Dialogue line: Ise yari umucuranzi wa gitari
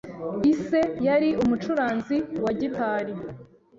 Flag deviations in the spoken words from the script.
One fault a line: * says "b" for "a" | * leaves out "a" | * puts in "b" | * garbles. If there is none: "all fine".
all fine